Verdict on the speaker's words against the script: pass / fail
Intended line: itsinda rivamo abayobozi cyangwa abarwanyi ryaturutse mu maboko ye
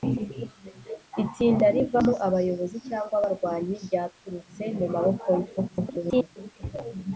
fail